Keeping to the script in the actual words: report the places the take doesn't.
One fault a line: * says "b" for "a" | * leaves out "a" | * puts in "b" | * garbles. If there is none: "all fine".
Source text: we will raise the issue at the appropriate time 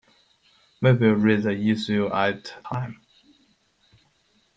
* leaves out "the appropriate"